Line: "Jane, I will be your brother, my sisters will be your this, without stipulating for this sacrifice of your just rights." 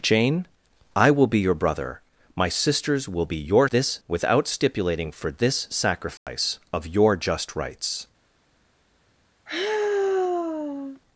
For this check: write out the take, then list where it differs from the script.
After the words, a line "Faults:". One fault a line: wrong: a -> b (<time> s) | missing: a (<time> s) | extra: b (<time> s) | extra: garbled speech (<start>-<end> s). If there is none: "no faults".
"Jane, I will be your brother, my sisters will be your this, without stipulating for this sacrifice of your just rights."
Faults:
no faults